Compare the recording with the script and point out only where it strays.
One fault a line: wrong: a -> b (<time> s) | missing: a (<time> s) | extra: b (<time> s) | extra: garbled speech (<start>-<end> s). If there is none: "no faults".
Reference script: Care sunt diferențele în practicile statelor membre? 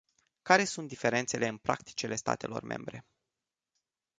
no faults